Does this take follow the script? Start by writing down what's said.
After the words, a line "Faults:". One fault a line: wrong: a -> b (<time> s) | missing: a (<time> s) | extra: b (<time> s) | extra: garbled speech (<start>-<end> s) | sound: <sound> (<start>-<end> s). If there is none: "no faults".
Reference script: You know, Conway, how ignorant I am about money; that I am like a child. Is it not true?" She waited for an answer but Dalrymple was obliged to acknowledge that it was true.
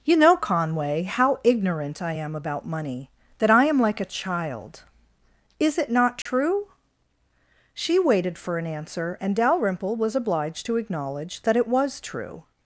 You know, Conway, how ignorant I am about money; that I am like a child. Is it not true?" She waited for an answer and Dalrymple was obliged to acknowledge that it was true.
Faults:
sound: dropout (6.2-6.3 s)
wrong: but -> and (9.2 s)